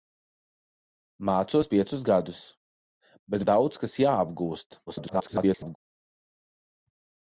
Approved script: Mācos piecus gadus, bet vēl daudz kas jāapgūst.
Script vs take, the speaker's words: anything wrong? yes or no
yes